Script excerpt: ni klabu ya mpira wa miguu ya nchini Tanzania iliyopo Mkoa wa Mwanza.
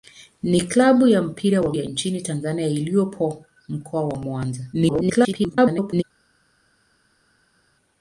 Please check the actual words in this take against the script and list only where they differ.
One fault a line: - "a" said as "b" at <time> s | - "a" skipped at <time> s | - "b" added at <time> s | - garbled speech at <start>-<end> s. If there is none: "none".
- "miguu" skipped at 1.7 s
- garbled speech at 4.7-6.0 s